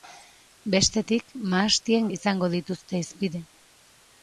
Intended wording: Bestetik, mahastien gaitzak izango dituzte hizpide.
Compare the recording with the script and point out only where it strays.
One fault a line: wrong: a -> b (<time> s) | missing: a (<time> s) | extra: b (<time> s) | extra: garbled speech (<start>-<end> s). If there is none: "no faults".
missing: gaitzak (2.1 s)